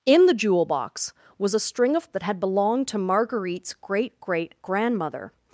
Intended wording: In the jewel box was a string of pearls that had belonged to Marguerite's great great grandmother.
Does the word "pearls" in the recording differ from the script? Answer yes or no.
yes